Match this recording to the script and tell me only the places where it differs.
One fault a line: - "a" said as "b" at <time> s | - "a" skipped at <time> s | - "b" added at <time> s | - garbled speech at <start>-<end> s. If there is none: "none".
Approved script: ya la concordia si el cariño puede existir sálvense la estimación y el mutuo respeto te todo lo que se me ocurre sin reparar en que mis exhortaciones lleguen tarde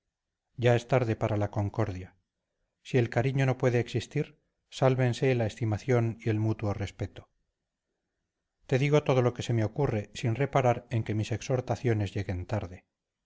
- "es tarde para" added at 0.8 s
- "no" added at 3.5 s
- "digo" added at 8.8 s